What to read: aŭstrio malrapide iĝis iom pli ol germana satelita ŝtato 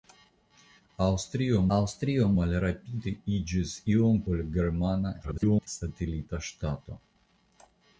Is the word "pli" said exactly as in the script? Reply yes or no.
no